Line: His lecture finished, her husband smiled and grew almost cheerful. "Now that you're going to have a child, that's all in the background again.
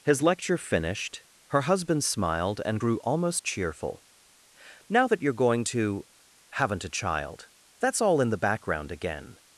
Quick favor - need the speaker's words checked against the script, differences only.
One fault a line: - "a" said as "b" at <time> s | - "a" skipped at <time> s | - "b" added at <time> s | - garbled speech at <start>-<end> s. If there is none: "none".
- "have" said as "haven't" at 6.5 s